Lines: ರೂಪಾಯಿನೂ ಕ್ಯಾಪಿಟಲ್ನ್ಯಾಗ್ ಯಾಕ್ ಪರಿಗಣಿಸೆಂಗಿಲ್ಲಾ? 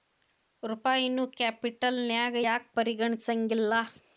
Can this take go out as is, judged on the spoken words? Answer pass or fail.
pass